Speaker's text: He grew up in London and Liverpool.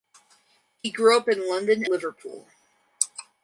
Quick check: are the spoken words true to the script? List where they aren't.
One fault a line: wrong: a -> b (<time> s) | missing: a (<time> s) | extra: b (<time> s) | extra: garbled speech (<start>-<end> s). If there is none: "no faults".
missing: and (1.9 s)